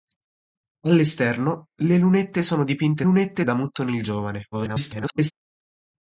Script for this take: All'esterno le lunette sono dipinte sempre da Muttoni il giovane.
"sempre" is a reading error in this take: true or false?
true